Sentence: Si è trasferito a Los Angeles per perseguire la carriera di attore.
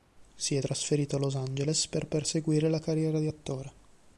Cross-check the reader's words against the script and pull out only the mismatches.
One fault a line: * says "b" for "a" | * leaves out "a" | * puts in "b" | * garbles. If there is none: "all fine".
all fine